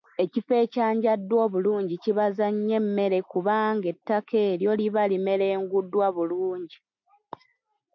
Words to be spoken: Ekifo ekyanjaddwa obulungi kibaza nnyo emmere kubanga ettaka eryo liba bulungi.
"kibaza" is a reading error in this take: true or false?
false